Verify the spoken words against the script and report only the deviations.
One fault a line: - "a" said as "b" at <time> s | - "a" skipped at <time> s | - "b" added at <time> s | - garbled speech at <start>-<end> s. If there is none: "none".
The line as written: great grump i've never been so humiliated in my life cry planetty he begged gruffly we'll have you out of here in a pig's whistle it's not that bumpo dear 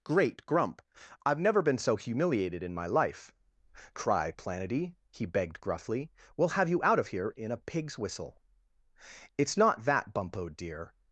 none